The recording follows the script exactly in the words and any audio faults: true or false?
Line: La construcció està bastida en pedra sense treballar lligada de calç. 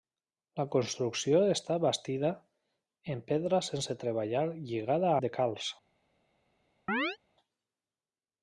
false